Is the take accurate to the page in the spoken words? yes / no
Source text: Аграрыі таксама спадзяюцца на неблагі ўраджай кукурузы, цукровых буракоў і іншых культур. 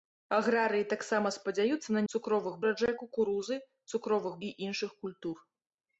no